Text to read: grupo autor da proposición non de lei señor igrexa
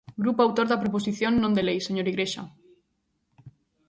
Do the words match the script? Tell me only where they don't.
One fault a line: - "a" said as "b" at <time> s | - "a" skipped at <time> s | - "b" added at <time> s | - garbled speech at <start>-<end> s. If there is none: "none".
none